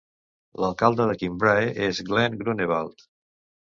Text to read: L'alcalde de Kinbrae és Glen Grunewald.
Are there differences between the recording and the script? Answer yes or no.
no